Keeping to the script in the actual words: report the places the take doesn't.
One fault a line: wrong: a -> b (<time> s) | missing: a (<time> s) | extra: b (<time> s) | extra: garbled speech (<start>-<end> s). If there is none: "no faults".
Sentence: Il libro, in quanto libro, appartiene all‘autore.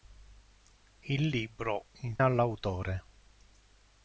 missing: quanto libro appartiene (2.2 s)